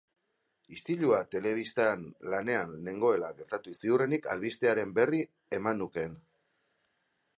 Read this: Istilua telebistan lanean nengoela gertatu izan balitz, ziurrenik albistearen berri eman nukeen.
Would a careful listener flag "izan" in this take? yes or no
yes